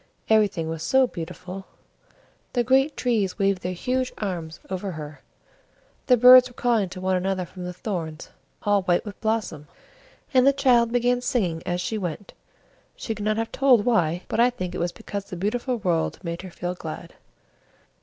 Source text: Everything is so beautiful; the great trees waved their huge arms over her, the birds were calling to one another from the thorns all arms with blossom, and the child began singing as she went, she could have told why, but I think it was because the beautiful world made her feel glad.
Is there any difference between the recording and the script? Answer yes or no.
yes